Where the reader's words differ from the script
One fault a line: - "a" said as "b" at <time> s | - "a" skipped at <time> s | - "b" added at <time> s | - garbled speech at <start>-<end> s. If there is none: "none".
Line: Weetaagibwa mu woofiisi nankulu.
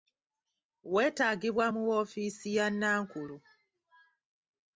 - "ya" added at 2.6 s